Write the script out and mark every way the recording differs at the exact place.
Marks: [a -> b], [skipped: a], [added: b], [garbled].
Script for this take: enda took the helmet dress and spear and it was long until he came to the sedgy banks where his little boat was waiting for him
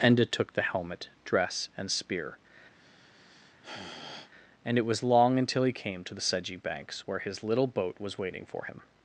enda took the helmet dress and spear and it was long until he came to the sedgy banks where his little boat was waiting for him